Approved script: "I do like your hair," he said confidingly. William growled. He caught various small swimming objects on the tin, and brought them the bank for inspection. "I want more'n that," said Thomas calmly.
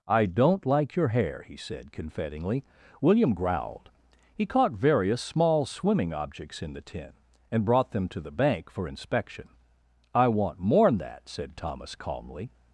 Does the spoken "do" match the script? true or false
false